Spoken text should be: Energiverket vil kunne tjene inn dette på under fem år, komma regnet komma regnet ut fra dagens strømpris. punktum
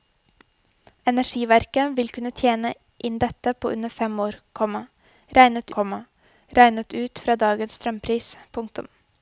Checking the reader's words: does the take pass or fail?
pass